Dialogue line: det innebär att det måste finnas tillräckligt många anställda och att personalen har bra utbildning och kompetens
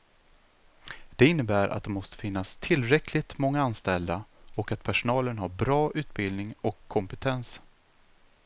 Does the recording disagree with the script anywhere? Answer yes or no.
no